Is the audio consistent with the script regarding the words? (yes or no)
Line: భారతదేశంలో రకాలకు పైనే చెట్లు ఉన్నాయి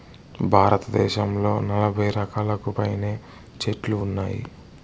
no